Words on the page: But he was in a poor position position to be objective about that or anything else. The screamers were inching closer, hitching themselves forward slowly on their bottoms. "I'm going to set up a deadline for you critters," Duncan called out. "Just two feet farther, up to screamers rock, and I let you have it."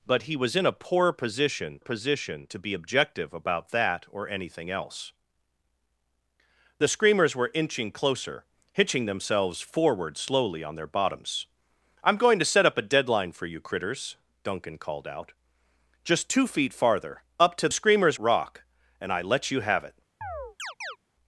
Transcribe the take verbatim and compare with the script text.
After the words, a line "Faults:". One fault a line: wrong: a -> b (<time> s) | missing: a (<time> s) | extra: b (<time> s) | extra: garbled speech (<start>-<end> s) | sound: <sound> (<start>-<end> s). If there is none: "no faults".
But he was in a poor position position to be objective about that or anything else. The screamers were inching closer, hitching themselves forward slowly on their bottoms. "I'm going to set up a deadline for you critters," Duncan called out. "Just two feet farther, up to screamers rock, and I let you have it."
Faults:
sound: chirp (20.2-21.0 s)